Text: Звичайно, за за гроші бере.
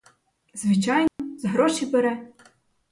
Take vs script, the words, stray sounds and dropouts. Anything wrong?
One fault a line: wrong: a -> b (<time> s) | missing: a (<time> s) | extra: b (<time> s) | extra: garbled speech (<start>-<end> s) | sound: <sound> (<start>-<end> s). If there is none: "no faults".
sound: dropout (1.1-1.2 s)
missing: за (1.5 s)